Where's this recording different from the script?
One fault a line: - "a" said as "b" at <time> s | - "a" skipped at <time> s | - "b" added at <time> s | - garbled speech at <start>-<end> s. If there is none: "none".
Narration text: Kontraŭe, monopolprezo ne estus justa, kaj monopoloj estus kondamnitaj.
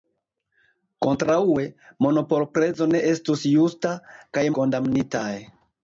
- "monopoloj estus" skipped at 4.5 s